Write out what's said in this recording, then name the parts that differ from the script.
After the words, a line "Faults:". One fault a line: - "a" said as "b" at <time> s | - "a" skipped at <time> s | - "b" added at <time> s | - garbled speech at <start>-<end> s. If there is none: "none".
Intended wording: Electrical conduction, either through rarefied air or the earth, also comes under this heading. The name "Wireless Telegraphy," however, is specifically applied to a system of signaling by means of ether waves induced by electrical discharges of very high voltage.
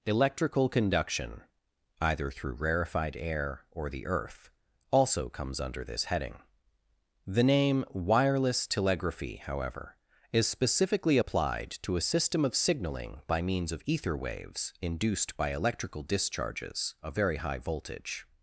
Electrical conduction, either through rarefied air or the earth, also comes under this heading. The name "Wireless Telegraphy," however, is specifically applied to a system of signaling by means of ether waves induced by electrical discharges of very high voltage.
Faults:
none